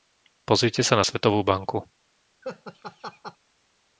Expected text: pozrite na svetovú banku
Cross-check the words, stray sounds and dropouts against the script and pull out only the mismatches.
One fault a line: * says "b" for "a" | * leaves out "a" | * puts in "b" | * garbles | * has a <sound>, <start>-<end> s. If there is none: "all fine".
* puts in "sa"
* has a laugh, 2.4-3.4 s